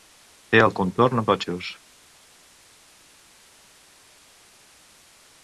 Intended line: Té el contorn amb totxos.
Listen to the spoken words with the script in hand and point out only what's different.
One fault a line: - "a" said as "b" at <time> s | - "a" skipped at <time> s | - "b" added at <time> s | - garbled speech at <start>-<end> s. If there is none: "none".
none